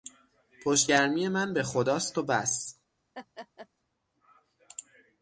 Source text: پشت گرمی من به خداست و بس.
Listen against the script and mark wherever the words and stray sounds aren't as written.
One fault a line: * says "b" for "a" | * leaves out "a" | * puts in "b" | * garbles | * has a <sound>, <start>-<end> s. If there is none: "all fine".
* has a laugh, 3.1-3.7 s